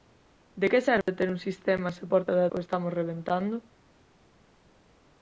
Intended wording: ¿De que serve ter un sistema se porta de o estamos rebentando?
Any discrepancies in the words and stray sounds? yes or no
yes